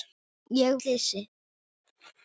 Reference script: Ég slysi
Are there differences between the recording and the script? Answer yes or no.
no